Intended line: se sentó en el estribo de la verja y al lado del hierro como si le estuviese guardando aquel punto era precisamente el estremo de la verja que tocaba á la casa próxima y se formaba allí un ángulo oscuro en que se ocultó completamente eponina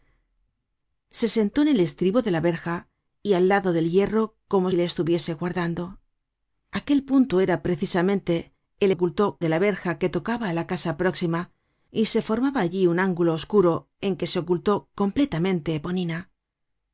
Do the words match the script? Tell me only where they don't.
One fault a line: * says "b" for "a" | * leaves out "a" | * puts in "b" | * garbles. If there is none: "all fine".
* leaves out "si"
* says "ocultó" for "estremo"